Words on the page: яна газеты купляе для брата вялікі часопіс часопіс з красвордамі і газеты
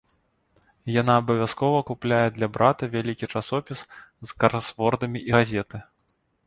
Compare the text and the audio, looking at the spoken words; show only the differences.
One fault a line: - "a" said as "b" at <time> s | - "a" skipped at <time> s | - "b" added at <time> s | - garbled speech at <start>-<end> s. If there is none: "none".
- "газеты" said as "абавязкова" at 1.2 s
- "часопіс" skipped at 3.8 s